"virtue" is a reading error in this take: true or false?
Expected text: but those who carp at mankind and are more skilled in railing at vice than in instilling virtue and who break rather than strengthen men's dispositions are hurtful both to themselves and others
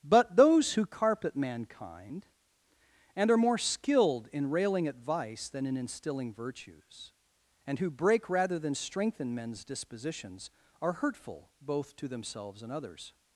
true